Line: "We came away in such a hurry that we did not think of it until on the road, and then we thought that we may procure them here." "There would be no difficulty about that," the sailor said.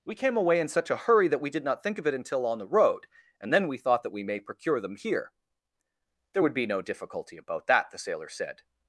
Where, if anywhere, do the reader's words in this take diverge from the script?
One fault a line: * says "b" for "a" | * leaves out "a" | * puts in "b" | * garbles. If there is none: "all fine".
all fine